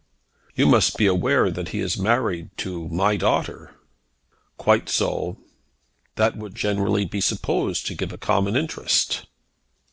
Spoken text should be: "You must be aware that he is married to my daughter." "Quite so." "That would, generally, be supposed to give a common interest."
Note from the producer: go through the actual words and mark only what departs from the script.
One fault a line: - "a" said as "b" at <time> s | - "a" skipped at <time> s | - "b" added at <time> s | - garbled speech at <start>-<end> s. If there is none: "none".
none